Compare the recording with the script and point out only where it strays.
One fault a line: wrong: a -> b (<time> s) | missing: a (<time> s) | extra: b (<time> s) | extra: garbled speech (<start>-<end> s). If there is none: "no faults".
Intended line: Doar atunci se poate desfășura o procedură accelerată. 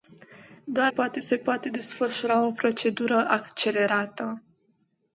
wrong: atunci -> poate (0.9 s)